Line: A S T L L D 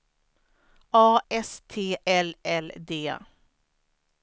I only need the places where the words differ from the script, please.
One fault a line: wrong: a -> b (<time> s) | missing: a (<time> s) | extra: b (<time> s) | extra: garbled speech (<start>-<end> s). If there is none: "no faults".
no faults